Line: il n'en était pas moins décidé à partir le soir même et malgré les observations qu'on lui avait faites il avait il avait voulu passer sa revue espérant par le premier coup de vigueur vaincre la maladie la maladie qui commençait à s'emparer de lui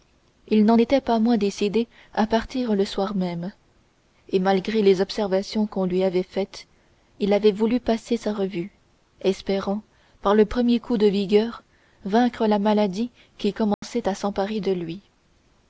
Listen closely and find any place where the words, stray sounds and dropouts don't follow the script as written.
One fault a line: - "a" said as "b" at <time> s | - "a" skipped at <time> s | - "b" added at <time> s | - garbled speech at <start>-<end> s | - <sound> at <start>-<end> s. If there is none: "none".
- "il avait" skipped at 7.5 s
- "la maladie" skipped at 13.1 s
- dropout at 13.7-13.8 s